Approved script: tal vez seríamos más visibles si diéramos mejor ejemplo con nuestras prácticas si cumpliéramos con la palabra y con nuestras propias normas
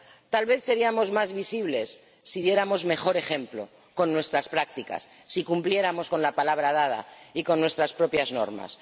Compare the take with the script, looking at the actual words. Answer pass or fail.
fail